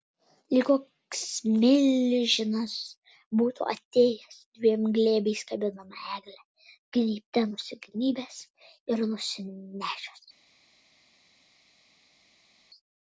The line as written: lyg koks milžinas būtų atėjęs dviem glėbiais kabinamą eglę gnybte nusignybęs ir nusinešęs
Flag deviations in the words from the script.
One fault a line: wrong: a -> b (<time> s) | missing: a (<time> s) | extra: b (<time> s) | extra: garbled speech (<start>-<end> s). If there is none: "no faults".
no faults